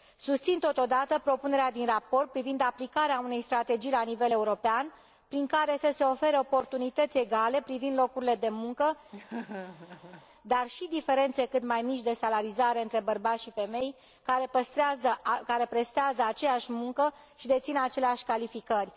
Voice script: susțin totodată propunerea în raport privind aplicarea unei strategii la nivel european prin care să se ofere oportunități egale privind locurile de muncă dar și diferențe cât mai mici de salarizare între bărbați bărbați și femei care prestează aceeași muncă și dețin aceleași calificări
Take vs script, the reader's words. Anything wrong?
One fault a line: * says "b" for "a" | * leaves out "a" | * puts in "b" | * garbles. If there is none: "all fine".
* says "din" for "în"
* leaves out "bărbați"